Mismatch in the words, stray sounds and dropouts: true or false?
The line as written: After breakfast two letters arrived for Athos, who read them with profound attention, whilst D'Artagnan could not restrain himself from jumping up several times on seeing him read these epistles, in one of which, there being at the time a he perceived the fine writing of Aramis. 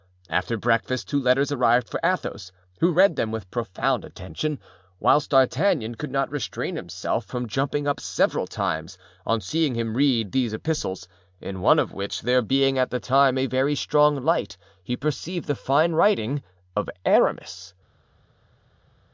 true